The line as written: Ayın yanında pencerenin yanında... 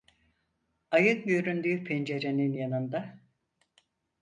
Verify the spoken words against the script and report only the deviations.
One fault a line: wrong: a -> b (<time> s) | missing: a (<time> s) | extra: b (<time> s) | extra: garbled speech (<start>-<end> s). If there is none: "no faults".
wrong: yanında -> göründüğü (1.2 s)